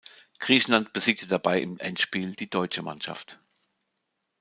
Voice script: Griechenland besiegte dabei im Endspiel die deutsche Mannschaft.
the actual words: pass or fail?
pass